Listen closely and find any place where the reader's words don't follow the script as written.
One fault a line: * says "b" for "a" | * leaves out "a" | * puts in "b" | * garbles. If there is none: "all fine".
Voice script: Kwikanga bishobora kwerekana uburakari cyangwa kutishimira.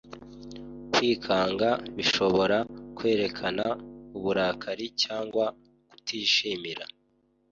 all fine